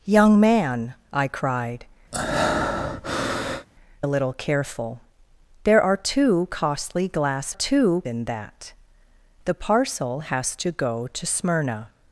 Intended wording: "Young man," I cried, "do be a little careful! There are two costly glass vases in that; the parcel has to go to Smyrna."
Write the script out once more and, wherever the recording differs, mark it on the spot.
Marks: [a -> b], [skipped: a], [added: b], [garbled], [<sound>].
"Young man," I cried, [skipped: "do be] [breath] a little careful! There are two costly glass [vases -> two] in that; the parcel has to go to Smyrna."